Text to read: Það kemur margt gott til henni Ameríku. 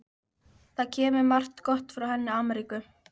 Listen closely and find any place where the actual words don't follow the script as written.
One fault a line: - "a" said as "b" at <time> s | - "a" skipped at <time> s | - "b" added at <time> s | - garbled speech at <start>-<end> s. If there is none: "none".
- "til" said as "frá" at 2.0 s